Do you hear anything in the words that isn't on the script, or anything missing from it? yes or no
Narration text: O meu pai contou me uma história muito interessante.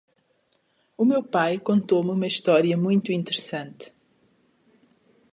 no